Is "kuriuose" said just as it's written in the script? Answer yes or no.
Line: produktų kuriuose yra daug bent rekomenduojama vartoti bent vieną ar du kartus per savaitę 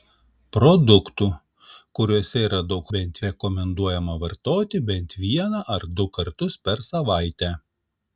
yes